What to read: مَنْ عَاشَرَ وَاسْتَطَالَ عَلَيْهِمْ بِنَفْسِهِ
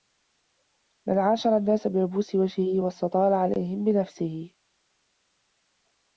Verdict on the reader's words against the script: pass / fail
fail